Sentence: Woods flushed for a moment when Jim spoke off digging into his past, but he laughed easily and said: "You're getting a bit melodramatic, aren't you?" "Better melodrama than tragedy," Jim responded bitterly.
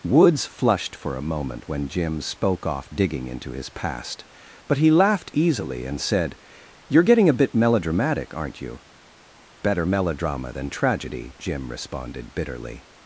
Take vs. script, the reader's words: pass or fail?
pass